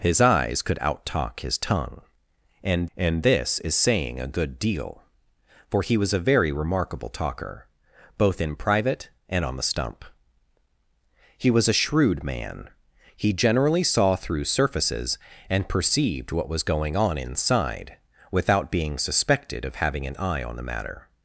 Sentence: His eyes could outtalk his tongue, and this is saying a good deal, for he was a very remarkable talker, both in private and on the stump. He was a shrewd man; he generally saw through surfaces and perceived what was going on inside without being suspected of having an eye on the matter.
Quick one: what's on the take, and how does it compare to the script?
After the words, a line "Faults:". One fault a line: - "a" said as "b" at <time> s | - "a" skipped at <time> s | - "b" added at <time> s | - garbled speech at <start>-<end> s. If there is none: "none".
His eyes could outtalk his tongue, and and this is saying a good deal, for he was a very remarkable talker, both in private and on the stump. He was a shrewd man; he generally saw through surfaces and perceived what was going on inside without being suspected of having an eye on the matter.
Faults:
- "and" added at 3.0 s